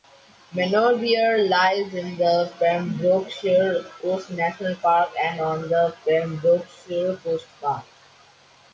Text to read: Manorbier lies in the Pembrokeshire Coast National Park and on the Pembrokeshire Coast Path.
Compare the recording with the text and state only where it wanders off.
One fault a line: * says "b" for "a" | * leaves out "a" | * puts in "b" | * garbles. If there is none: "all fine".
all fine